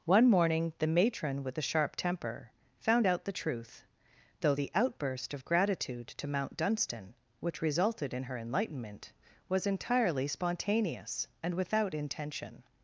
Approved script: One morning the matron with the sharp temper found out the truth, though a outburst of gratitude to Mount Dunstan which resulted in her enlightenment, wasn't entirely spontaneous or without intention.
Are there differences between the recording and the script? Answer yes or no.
yes